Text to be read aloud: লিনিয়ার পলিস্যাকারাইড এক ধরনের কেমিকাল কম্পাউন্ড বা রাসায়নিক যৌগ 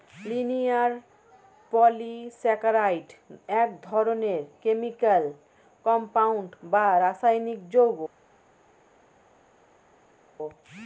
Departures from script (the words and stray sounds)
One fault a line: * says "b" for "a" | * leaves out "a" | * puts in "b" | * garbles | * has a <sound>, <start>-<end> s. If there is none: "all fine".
all fine